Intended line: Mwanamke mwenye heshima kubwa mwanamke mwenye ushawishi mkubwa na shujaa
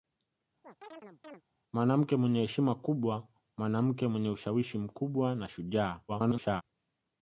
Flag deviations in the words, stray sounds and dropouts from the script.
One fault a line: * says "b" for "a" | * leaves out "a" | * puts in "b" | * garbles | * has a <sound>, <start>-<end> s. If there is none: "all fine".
* has a chirp, 0.6-1.4 s
* garbles